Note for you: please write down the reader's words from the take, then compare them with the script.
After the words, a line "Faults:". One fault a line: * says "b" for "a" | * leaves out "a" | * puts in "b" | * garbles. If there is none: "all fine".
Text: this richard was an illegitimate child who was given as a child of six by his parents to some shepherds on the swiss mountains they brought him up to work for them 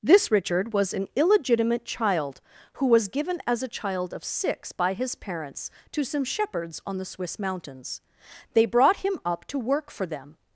this richard was an illegitimate child who was given as a child of six by his parents to some shepherds on the swiss mountains they brought him up to work for them
Faults:
all fine